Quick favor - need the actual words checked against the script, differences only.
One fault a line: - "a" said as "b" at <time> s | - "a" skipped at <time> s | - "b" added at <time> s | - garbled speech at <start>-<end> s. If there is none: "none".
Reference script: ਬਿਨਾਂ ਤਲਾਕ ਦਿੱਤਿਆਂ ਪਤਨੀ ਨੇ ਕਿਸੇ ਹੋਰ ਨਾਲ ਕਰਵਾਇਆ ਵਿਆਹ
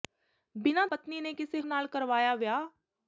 - "ਤਲਾਕ ਦਿੱਤਿਆਂ" skipped at 0.8 s
- "ਹੋਰ" skipped at 1.6 s